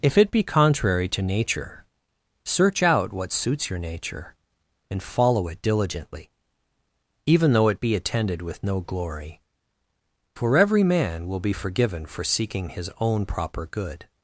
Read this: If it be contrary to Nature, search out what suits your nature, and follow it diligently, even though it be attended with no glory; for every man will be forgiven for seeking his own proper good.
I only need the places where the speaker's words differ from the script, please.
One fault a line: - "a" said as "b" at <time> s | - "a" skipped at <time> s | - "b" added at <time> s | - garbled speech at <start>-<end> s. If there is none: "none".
none